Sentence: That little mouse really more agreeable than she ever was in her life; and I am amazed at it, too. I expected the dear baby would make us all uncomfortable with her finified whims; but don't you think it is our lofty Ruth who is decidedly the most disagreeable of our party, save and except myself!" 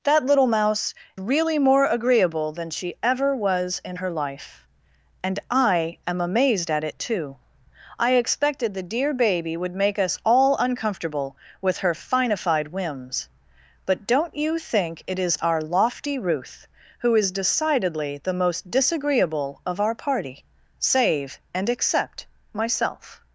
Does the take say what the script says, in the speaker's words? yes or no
yes